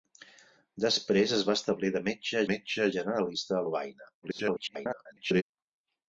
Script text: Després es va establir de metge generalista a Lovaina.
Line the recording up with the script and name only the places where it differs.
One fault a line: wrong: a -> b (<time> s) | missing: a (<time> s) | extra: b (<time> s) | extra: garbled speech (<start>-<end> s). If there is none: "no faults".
extra: metge (2.5 s)
extra: garbled speech (4.2-5.4 s)